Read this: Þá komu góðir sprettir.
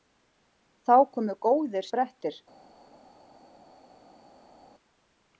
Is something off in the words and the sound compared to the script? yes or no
no